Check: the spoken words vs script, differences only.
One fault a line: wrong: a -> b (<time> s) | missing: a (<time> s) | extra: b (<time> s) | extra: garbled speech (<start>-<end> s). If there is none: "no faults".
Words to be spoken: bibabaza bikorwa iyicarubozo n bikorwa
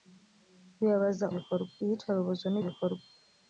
no faults